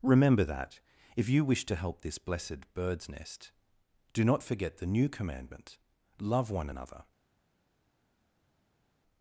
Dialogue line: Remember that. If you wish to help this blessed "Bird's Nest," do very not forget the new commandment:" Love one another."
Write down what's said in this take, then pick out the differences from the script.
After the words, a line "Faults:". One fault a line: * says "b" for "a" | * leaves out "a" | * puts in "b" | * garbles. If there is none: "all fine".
Remember that. If you wish to help this blessed "Bird's Nest," do not forget the new commandment:" Love one another."
Faults:
* leaves out "very"